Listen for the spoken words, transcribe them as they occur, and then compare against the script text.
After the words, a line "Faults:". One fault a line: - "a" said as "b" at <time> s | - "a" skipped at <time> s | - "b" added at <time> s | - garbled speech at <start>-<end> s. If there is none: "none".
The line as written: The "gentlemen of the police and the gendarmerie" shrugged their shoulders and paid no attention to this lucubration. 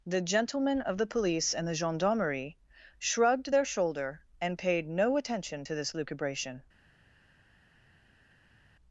The "gentlemen of the police and the gendarmerie" shrugged their shoulder and paid no attention to this lucubration.
Faults:
- "shoulders" said as "shoulder" at 3.7 s